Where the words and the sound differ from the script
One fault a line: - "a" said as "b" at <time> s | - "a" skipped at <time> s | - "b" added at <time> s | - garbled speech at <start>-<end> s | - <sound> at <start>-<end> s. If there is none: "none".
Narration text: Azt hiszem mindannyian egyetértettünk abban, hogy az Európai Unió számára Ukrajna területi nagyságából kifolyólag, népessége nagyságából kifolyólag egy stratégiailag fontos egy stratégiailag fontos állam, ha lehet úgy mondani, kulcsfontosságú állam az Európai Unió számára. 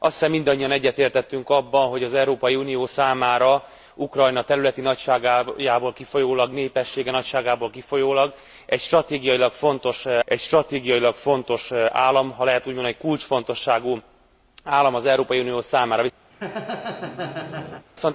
- laugh at 16.3-17.9 s